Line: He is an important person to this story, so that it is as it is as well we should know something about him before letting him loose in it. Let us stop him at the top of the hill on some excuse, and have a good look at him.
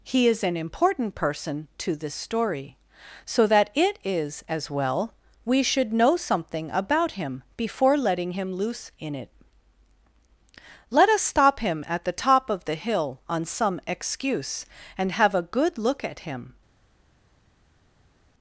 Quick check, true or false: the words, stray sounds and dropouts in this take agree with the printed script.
false